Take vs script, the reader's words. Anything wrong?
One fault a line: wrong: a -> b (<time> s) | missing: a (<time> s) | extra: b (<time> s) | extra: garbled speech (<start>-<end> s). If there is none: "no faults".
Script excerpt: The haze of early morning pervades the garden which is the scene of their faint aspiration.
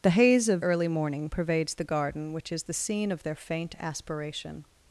no faults